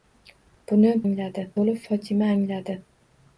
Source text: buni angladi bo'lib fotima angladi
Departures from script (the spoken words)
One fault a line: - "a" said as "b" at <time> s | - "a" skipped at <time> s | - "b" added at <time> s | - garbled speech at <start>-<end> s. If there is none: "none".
none